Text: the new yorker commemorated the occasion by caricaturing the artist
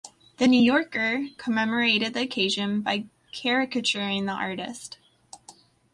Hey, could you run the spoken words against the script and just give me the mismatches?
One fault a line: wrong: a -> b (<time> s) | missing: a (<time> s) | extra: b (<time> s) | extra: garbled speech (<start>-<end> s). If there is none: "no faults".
no faults